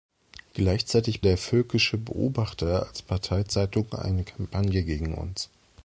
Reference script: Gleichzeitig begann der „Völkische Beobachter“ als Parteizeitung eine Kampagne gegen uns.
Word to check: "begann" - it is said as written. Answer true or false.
false